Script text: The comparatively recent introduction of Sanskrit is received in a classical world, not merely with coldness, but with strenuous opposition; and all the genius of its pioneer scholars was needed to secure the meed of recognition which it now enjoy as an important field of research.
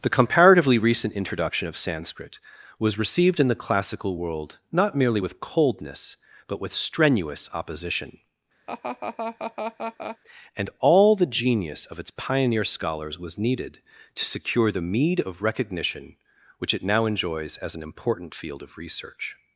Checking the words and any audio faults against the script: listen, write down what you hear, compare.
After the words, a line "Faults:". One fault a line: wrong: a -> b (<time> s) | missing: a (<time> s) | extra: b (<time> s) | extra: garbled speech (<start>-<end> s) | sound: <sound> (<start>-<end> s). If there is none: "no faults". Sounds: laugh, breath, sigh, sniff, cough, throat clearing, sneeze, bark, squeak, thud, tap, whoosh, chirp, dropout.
The comparatively recent introduction of Sanskrit was received in the classical world, not merely with coldness, but with strenuous opposition; and all the genius of its pioneer scholars was needed to secure the meed of recognition which it now enjoys as an important field of research.
Faults:
wrong: is -> was (2.8 s)
wrong: a -> the (3.5 s)
sound: laugh (8.7-10.2 s)
wrong: enjoy -> enjoys (17.0 s)